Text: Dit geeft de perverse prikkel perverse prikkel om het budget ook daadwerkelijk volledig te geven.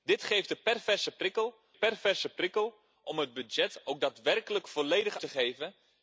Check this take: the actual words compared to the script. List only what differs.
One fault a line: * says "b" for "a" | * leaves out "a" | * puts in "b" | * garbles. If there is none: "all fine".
all fine